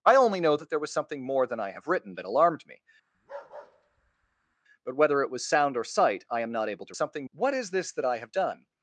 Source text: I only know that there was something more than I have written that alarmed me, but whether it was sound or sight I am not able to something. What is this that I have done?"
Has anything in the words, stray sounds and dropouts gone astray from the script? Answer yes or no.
yes